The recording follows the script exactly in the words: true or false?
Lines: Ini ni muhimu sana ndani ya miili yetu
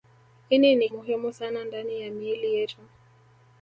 true